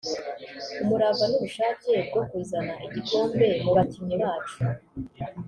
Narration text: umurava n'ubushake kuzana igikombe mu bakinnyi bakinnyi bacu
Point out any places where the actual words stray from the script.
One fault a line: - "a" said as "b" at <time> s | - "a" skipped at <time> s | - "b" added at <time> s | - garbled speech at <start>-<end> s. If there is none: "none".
- "bwo" added at 2.1 s
- "bakinnyi" skipped at 4.2 s